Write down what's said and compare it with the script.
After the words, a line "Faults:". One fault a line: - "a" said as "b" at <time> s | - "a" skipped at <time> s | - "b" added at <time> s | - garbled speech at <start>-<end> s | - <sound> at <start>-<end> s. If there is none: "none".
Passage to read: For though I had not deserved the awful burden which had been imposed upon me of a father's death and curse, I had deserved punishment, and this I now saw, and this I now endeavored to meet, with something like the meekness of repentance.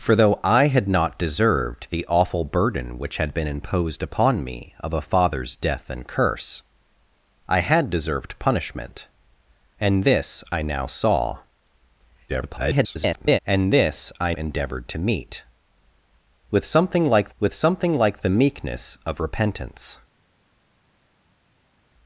For though I had not deserved the awful burden which had been imposed upon me of a father's death and curse, I had deserved punishment, and this I now saw, [garbled] and this I endeavored to meet, with something like with something like the meekness of repentance.
Faults:
- garbled speech at 12.3-13.4 s
- "now" skipped at 14.3 s
- "with something like" added at 17.4 s